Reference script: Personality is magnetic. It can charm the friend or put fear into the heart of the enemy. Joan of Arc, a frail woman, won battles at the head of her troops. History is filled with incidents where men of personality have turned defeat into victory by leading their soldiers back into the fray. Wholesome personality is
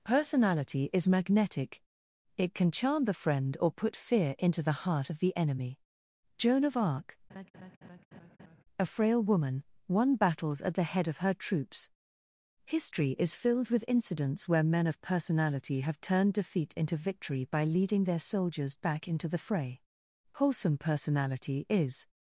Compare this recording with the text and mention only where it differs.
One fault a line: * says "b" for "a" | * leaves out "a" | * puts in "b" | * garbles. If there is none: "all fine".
all fine